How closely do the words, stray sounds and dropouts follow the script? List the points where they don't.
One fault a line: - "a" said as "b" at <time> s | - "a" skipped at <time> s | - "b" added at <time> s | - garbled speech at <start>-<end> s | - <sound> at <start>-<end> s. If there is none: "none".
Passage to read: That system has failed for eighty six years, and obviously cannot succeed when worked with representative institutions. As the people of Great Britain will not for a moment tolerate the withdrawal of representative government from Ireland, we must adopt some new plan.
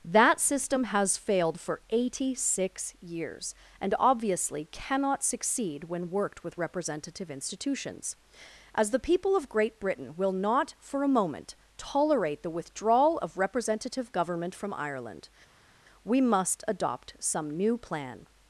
none